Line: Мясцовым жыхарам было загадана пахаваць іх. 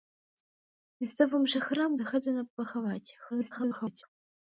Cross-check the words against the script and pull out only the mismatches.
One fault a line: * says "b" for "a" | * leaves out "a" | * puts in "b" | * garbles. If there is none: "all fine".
* leaves out "было"
* garbles